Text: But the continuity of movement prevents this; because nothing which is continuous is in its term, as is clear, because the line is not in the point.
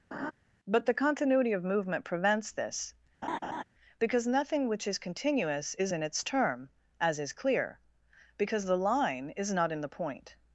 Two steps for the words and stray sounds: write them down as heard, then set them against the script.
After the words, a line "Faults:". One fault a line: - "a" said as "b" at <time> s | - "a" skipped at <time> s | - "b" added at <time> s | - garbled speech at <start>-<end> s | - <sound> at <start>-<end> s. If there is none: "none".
But the continuity of movement prevents this; because nothing which is continuous is in its term, as is clear, because the line is not in the point.
Faults:
- laugh at 0.1-0.3 s
- laugh at 3.2-3.6 s